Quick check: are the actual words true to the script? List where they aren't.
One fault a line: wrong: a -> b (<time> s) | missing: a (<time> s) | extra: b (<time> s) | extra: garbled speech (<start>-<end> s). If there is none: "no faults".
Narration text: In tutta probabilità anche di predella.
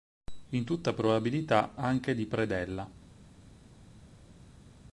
no faults